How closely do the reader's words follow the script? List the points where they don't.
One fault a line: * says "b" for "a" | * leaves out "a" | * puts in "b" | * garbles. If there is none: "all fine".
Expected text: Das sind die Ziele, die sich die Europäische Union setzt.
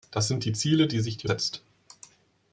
* leaves out "Europäische Union"